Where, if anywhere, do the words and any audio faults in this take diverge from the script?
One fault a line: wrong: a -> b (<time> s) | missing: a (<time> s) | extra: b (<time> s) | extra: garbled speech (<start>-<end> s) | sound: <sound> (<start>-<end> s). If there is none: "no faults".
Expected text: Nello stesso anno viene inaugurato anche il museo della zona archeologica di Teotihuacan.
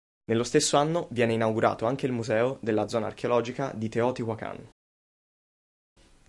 no faults